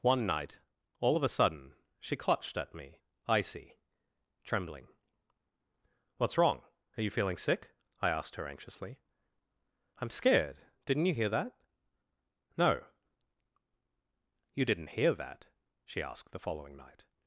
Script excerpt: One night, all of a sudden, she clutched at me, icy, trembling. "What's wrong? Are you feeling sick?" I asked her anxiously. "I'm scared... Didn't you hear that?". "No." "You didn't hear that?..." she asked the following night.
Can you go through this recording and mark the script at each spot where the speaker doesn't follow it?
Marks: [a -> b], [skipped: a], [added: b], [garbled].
One night, all of a sudden, she clutched at me, icy, trembling. "What's wrong? Are you feeling sick?" I asked her anxiously. "I'm scared... Didn't you hear that?". "No." "You didn't hear that?..." she asked the following night.